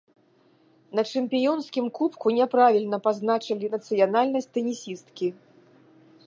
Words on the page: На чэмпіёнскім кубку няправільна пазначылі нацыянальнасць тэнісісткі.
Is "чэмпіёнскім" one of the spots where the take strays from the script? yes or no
no